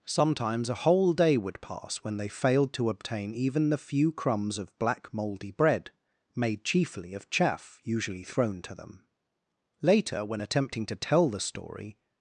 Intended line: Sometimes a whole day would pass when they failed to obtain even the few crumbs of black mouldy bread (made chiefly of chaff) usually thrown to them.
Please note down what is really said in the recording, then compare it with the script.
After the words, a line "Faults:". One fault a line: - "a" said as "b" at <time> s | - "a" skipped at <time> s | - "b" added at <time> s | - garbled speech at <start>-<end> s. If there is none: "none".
Sometimes a whole day would pass when they failed to obtain even the few crumbs of black mouldy bread (made chiefly of chaff) usually thrown to them. Later, when attempting to tell the story
Faults:
- "Later when attempting to tell the story" added at 9.8 s